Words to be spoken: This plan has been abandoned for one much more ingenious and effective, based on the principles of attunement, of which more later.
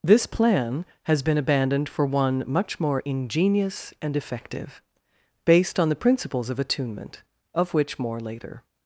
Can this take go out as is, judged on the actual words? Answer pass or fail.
pass